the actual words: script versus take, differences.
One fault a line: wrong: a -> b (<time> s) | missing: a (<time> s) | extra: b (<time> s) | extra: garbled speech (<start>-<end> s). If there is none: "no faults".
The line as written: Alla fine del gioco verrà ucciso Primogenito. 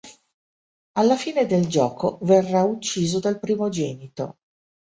extra: dal (3.2 s)